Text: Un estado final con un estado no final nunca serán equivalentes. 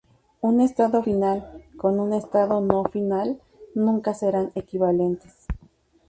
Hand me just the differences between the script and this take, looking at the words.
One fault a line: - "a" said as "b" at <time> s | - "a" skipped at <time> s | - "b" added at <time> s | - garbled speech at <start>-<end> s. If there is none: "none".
none